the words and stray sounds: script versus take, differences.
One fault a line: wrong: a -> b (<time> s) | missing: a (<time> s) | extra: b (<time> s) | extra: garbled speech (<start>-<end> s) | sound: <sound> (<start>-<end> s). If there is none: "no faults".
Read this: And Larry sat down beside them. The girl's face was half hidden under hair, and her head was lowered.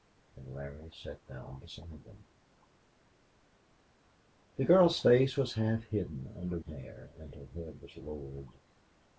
no faults